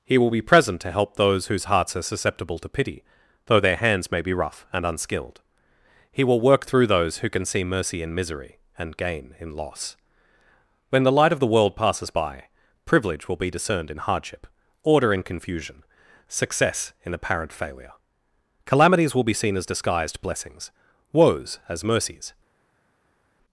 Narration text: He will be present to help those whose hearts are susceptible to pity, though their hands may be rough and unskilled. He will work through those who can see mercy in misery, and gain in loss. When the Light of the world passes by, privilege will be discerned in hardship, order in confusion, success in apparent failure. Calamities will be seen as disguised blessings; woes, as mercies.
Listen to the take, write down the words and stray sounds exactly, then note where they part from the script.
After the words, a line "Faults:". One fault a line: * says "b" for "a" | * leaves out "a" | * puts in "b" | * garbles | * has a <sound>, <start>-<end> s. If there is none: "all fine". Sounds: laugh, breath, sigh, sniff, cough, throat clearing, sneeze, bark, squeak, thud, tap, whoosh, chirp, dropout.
He will be present to help those whose hearts are susceptible to pity, though their hands may be rough and unskilled. He will work through those who can see mercy in misery, and gain in loss. When the Light of the world passes by, privilege will be discerned in hardship, order in confusion, success in apparent failure. Calamities will be seen as disguised blessings; woes, as mercies.
Faults:
all fine